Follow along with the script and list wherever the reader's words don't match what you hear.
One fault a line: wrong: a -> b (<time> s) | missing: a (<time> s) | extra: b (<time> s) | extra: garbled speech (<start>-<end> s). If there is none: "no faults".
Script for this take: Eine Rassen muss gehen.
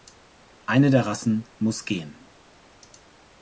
extra: der (0.9 s)